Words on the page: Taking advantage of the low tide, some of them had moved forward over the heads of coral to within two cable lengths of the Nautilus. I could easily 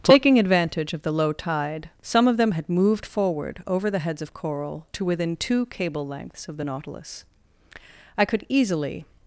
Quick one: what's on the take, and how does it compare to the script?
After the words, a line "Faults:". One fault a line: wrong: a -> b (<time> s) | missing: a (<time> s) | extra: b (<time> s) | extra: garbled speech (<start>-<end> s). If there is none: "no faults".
Taking advantage of the low tide, some of them had moved forward over the heads of coral to within two cable lengths of the Nautilus. I could easily
Faults:
no faults